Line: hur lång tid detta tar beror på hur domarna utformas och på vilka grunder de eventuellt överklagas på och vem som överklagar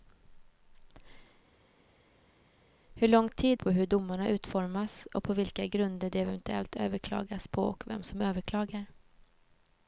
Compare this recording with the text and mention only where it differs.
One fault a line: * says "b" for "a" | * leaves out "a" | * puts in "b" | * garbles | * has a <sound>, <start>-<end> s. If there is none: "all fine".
* leaves out "detta tar beror"